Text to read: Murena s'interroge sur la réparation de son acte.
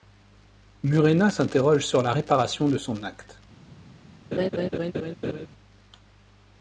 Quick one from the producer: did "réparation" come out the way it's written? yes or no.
yes